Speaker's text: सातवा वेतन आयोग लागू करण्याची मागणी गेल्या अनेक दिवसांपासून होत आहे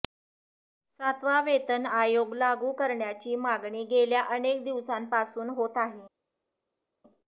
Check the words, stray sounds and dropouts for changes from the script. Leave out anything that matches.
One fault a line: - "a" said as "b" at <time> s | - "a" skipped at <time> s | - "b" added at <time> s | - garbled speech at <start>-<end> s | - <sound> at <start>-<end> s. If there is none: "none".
none